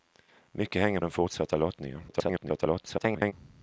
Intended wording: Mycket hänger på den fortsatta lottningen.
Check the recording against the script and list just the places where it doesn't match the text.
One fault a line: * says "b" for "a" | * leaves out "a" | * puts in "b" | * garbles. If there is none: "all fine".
* leaves out "på"
* garbles